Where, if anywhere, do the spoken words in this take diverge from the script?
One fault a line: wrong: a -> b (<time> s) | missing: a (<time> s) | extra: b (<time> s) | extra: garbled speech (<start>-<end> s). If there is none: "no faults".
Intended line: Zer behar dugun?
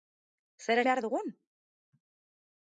no faults